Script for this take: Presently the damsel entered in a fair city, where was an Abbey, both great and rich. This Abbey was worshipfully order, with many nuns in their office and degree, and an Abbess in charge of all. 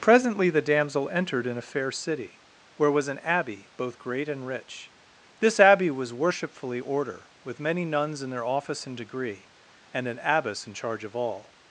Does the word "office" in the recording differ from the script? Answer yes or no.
no